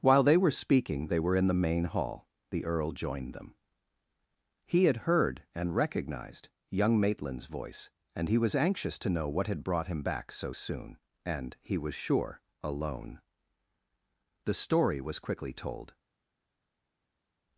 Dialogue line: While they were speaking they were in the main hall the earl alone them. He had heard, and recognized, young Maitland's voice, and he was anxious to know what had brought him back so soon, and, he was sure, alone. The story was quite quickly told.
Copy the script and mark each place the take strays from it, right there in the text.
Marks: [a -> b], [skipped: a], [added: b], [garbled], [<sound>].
While they were speaking they were in the main hall the earl [alone -> joined] them. He had heard, and recognized, young Maitland's voice, and he was anxious to know what had brought him back so soon, and, he was sure, alone. The story was [skipped: quite] quickly told.